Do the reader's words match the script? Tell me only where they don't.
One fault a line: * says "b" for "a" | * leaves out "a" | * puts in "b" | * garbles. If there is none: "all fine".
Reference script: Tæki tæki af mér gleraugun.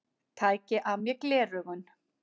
* leaves out "tæki"